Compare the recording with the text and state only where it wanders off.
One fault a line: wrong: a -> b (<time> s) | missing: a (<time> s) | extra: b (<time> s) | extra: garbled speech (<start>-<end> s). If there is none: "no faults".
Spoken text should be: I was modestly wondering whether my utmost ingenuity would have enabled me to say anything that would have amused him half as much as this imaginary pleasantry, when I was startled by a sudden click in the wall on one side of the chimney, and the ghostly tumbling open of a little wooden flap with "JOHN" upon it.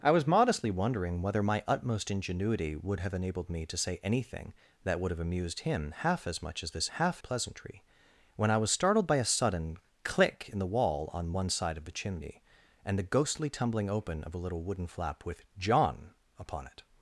wrong: imaginary -> half (6.9 s)